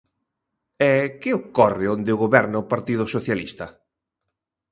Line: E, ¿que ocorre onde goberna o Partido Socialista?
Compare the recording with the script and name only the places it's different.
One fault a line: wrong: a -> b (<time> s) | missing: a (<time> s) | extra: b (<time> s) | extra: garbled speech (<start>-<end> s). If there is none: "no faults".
no faults